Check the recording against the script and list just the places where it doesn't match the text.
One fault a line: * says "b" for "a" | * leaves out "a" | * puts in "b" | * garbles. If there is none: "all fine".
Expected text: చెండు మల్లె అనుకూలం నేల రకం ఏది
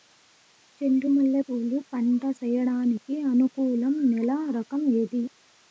* puts in "పూలు పంట సేయడానికి"